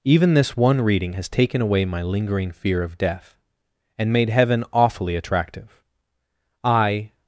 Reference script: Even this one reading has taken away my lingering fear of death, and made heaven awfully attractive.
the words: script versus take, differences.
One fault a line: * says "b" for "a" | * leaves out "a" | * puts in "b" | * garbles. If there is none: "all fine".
* puts in "I"